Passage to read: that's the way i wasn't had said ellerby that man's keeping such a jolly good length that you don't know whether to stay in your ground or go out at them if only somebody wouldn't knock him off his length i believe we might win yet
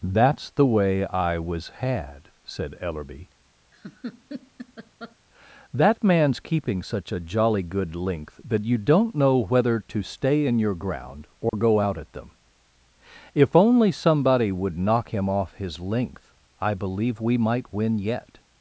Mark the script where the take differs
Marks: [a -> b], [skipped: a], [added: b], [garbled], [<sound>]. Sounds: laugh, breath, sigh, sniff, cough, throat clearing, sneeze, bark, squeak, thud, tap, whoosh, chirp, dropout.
that's the way i [wasn't -> was] had said ellerby [laugh] that man's keeping such a jolly good length that you don't know whether to stay in your ground or [dropout] go out at them if only somebody [wouldn't -> would] knock him off his length i believe we might win yet